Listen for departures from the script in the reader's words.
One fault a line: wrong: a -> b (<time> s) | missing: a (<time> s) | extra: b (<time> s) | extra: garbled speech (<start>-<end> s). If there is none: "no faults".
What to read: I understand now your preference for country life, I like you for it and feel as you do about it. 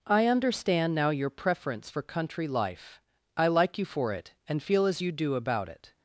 no faults